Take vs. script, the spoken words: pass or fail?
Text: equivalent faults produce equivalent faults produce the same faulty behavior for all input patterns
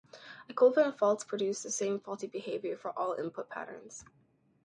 fail